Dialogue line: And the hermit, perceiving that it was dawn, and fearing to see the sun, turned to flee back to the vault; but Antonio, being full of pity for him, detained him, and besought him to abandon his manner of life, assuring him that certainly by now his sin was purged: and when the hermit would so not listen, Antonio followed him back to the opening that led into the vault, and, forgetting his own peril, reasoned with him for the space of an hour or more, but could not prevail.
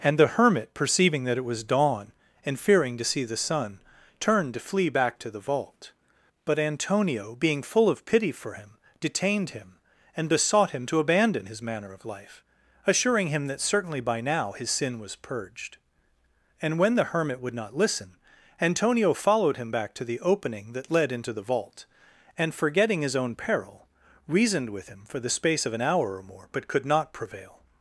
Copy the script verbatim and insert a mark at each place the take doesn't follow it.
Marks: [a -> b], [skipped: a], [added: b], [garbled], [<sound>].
And the hermit, perceiving that it was dawn, and fearing to see the sun, turned to flee back to the vault; but Antonio, being full of pity for him, detained him, and besought him to abandon his manner of life, assuring him that certainly by now his sin was purged: and when the hermit would [skipped: so] not listen, Antonio followed him back to the opening that led into the vault, and, forgetting his own peril, reasoned with him for the space of an hour or more, but could not prevail.